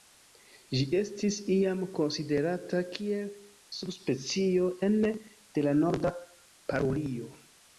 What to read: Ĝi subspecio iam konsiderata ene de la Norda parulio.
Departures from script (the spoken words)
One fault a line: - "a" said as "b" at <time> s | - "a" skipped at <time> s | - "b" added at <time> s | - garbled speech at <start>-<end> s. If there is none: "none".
- "subspecio" said as "estis" at 1.0 s
- "kiel subspecio" added at 2.9 s